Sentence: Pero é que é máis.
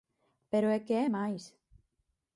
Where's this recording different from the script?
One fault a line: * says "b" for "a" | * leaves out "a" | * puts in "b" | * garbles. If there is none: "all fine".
all fine